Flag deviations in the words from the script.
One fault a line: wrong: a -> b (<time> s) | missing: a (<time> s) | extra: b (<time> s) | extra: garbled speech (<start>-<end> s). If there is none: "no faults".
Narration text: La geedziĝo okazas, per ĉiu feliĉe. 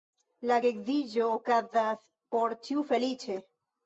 wrong: per -> por (2.4 s)